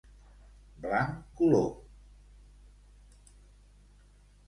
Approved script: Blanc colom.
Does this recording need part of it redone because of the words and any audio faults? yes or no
no